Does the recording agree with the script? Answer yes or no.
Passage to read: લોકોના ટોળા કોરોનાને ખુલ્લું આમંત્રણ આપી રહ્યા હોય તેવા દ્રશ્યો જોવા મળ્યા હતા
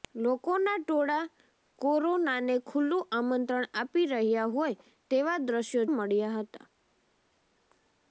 no